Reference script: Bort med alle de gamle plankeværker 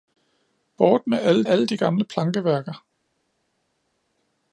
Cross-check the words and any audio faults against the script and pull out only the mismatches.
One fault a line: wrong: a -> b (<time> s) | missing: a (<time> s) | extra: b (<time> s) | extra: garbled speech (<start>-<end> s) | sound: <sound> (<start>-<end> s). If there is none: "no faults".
extra: alle (1.4 s)